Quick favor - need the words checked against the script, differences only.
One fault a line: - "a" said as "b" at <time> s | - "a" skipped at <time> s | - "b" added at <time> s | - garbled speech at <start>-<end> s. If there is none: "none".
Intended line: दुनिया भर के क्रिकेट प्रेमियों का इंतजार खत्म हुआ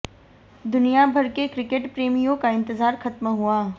none